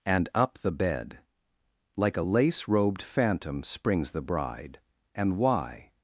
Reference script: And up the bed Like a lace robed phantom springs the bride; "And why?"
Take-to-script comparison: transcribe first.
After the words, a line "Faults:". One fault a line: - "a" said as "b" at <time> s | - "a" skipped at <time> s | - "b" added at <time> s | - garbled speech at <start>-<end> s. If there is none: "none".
And up the bed Like a lace robed phantom springs the bride; "And why?"
Faults:
none